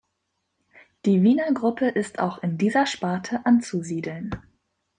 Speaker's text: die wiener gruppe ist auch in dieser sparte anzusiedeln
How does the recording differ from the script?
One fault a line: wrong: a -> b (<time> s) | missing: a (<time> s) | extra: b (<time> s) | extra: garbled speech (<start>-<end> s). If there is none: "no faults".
no faults